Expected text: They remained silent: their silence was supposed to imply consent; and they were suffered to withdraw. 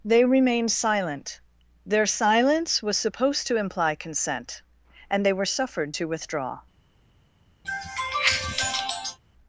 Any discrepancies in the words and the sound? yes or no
yes